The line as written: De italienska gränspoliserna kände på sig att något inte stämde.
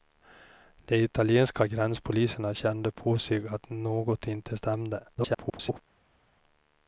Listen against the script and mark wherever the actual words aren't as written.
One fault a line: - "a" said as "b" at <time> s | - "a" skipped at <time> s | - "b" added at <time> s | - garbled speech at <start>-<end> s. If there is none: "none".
- garbled speech at 5.1-5.8 s